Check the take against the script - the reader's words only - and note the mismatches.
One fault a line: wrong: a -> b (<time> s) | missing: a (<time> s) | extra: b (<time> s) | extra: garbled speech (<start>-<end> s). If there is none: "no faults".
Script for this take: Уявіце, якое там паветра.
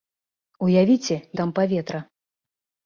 missing: якое (1.2 s)